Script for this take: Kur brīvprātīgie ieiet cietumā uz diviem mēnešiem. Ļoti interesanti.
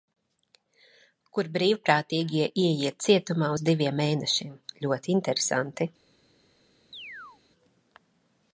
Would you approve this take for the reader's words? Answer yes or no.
yes